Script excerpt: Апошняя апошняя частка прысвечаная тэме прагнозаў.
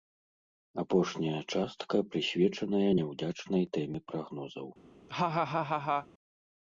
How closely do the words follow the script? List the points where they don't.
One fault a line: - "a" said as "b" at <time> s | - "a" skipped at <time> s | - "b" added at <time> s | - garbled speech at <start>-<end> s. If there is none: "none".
- "апошняя" skipped at 1.4 s
- "няўдзячнай" added at 3.0 s